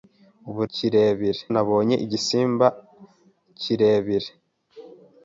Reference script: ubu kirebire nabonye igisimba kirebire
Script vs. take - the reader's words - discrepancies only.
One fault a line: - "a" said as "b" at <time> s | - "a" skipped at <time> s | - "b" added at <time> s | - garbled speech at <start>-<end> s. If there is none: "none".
none